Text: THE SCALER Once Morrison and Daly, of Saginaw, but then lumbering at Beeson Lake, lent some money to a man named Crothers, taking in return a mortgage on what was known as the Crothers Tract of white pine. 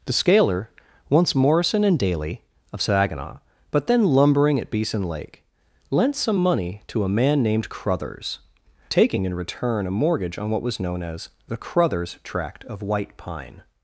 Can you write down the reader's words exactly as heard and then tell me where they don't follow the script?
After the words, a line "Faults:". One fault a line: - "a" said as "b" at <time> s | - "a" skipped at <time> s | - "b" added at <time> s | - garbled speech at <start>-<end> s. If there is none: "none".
THE SCALER Once Morrison and Daly, of Saginaw, but then lumbering at Beeson Lake, lent some money to a man named Crothers, taking in return a mortgage on what was known as the Crothers Tract of white pine.
Faults:
none